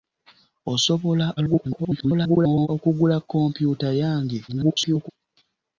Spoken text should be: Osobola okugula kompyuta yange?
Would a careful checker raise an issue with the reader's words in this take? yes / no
yes